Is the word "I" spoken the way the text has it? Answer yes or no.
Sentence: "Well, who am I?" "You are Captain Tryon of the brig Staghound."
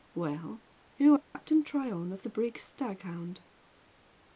no